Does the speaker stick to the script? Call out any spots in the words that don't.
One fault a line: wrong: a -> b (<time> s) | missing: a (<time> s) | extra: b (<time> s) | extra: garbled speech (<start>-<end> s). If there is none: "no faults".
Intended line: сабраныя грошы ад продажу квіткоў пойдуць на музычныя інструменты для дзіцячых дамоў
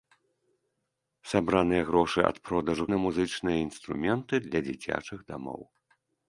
missing: квіткоў пойдуць (2.9 s)